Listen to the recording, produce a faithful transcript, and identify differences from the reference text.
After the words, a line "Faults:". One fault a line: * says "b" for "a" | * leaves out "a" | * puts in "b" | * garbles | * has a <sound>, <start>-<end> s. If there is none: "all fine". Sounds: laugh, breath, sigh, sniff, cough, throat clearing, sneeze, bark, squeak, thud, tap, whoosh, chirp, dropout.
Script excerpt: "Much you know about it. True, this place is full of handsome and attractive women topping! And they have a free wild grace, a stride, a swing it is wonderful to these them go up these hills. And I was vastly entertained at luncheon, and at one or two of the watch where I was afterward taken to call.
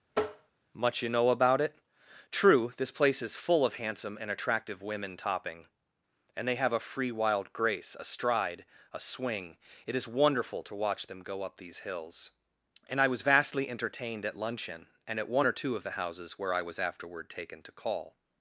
"Much you know about it. True, this place is full of handsome and attractive women topping! And they have a free wild grace, a stride, a swing it is wonderful to watch them go up these hills. And I was vastly entertained at luncheon, and at one or two of the houses where I was afterward taken to call.
Faults:
* has a tap, 0.1-0.5 s
* says "watch" for "these"
* says "houses" for "watch"